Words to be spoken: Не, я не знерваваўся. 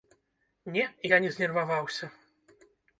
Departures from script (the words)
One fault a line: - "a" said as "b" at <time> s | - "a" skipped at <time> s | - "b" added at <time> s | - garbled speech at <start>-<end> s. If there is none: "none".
none